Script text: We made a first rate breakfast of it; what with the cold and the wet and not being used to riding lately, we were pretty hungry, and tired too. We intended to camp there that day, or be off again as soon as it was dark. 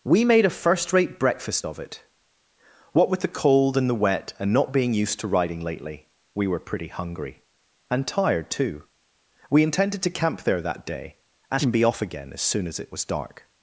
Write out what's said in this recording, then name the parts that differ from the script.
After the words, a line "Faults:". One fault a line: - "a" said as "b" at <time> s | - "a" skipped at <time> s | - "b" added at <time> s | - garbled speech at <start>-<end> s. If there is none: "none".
We made a first rate breakfast of it; what with the cold and the wet and not being used to riding lately, we were pretty hungry, and tired too. We intended to camp there that day, and be off again as soon as it was dark.
Faults:
- "or" said as "and" at 11.5 s